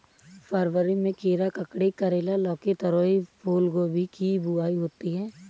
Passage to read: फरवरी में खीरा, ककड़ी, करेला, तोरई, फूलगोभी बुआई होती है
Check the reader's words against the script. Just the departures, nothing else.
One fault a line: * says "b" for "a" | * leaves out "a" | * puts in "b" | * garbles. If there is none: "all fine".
* puts in "लौकी"
* puts in "की"